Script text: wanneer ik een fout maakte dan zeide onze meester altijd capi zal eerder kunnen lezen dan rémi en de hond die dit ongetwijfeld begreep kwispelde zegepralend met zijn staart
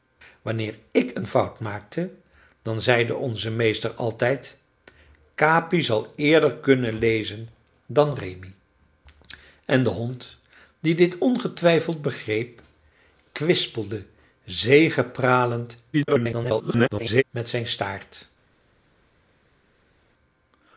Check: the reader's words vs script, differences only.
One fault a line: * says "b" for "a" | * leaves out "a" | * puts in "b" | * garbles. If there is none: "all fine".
* garbles